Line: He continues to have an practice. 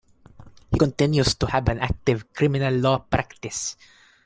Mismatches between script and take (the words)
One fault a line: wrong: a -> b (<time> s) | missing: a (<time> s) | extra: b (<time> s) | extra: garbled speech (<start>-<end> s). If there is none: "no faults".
extra: active criminal law (1.8 s)